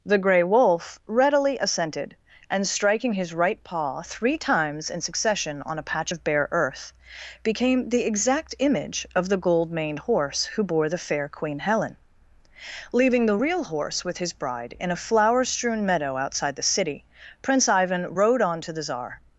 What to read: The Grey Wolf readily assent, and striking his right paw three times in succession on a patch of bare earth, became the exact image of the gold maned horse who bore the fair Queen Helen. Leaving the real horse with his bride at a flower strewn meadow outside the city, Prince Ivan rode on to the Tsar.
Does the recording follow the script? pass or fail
fail